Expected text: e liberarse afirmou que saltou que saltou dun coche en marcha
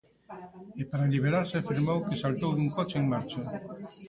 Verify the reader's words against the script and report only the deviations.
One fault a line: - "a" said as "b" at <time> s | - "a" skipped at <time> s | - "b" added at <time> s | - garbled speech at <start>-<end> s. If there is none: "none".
- "para" added at 0.9 s
- "que saltou" skipped at 2.5 s